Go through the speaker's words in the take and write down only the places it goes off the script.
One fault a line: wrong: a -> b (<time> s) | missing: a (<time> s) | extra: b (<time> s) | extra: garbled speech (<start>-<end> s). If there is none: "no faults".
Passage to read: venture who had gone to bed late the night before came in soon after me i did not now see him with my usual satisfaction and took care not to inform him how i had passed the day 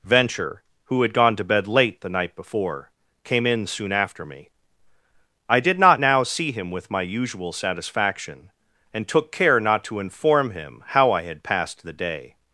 no faults